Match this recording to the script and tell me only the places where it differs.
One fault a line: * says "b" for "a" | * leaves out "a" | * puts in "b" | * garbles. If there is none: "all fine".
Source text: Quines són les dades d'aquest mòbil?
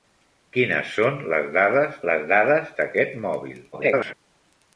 * puts in "les dades"
* garbles